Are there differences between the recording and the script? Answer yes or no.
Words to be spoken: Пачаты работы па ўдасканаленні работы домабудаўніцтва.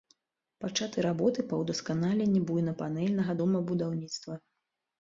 yes